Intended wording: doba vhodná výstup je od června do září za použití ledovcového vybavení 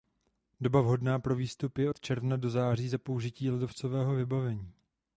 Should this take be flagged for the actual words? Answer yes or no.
yes